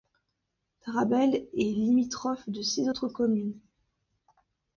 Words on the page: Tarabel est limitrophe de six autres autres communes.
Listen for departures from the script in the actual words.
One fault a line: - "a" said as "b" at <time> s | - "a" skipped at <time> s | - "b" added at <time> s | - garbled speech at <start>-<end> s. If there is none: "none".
- "autres" skipped at 3.1 s